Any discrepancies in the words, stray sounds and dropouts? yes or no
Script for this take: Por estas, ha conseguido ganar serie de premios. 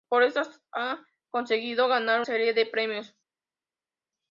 no